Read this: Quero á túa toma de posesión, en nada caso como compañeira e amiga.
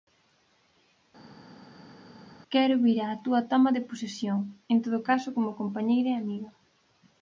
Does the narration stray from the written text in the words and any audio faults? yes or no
yes